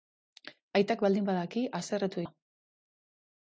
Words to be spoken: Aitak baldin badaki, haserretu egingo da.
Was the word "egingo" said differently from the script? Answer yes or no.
yes